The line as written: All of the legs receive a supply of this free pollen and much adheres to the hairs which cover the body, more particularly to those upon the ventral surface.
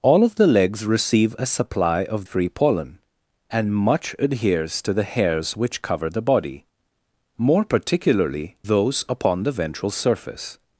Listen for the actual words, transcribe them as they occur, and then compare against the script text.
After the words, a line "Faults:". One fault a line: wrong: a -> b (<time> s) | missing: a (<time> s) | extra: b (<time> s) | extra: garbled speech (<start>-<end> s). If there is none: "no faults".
All of the legs receive a supply of free pollen and much adheres to the hairs which cover the body, more particularly those upon the ventral surface.
Faults:
missing: this (2.2 s)
missing: to (8.6 s)